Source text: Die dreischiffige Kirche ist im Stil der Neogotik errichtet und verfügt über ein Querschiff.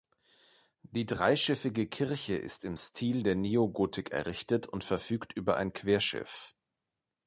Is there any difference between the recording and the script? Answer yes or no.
no